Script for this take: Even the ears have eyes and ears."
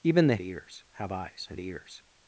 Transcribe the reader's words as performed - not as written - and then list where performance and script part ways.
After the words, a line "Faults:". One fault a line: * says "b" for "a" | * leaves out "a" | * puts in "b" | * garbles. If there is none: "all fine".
Even the ears have eyes and ears."
Faults:
all fine